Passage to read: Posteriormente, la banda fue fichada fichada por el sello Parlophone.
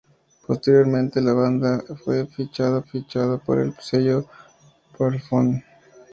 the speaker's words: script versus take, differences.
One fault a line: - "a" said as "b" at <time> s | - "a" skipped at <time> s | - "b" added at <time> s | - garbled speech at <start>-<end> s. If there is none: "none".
none